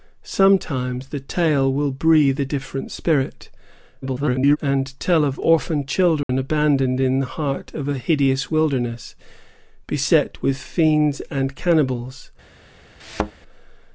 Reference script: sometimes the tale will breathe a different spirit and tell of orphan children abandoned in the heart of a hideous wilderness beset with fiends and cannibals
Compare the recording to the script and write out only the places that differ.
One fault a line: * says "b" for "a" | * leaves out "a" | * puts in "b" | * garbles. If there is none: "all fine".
* garbles